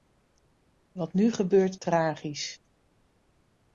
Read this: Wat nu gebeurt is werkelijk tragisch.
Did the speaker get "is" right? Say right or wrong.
wrong